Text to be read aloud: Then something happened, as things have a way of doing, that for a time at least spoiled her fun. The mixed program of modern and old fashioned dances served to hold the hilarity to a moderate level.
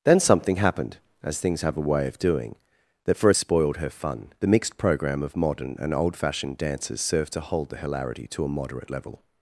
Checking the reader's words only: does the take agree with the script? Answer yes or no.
no